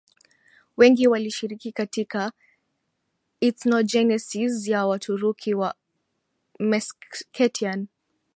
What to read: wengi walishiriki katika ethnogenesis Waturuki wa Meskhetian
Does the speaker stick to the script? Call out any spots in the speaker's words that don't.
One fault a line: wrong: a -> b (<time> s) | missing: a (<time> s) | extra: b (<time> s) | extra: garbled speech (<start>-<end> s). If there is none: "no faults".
extra: ya (4.7 s)